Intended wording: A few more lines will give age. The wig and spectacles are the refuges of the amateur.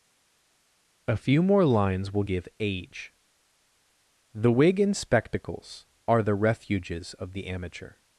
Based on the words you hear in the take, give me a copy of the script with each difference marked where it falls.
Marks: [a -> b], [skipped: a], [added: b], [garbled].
A few more lines will give age. The wig and spectacles are the refuges of the amateur.